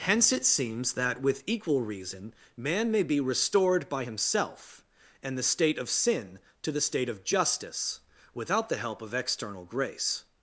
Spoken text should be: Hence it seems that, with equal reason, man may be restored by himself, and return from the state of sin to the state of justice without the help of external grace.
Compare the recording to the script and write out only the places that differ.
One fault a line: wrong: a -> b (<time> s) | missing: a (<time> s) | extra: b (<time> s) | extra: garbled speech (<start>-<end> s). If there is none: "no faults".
missing: return from (5.4 s)